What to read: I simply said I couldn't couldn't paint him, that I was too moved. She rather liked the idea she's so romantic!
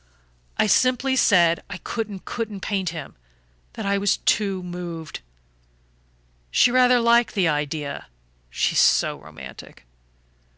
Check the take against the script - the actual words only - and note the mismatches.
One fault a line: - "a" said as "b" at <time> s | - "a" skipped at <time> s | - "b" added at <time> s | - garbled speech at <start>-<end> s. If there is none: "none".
none